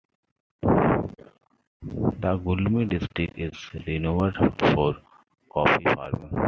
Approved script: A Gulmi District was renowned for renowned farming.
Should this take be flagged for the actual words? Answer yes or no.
yes